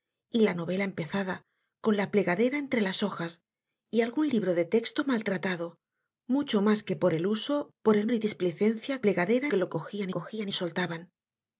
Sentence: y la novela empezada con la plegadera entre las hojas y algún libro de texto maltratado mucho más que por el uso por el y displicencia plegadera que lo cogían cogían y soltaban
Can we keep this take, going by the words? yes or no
yes